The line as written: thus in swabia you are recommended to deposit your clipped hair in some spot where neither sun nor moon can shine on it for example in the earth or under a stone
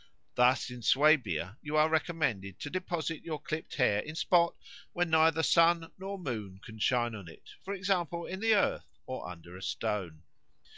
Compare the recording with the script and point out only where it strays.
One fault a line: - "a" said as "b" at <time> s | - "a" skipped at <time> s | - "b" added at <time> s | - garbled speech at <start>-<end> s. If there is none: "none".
- "some" skipped at 4.2 s